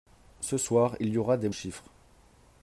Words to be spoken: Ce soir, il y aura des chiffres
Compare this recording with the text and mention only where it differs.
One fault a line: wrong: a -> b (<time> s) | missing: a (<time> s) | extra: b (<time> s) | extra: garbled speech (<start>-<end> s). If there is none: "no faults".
no faults